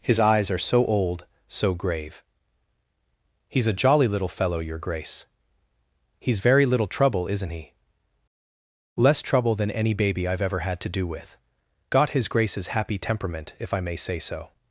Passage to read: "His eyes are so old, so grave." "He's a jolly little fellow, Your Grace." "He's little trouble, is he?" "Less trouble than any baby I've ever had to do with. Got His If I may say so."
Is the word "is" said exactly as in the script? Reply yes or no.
no